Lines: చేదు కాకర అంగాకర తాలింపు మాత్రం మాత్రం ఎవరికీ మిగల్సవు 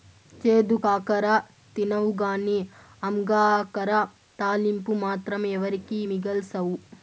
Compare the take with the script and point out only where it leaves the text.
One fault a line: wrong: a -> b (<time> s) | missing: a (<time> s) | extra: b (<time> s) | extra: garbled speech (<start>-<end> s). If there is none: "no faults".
extra: తినవుగానీ (1.8 s)
missing: మాత్రం (5.4 s)